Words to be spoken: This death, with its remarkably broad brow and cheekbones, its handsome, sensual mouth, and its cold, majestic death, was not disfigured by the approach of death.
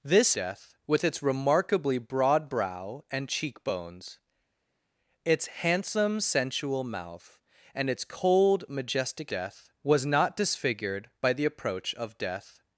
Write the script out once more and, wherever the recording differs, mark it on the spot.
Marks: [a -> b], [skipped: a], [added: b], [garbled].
This death, with its remarkably broad brow and cheekbones, its handsome, sensual mouth, and its cold, majestic death, was not disfigured by the approach of death.